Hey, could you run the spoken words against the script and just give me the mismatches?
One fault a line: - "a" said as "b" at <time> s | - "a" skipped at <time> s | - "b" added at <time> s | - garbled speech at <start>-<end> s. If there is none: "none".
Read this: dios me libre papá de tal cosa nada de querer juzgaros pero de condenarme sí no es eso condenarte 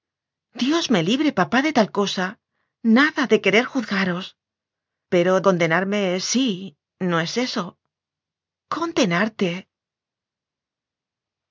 - "de" skipped at 5.4 s